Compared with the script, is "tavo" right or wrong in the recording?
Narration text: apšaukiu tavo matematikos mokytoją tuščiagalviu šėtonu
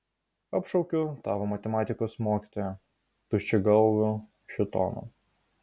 right